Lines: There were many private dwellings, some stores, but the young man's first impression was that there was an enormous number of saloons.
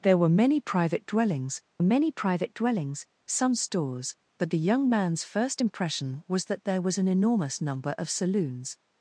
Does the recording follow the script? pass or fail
fail